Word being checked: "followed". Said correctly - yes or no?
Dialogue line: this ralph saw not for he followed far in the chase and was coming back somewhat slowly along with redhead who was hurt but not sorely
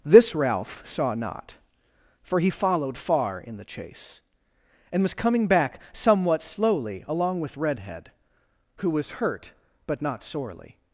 yes